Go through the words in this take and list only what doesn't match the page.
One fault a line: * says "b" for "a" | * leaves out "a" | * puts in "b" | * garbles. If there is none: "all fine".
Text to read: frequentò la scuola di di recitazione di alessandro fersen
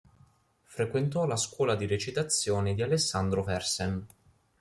* leaves out "di"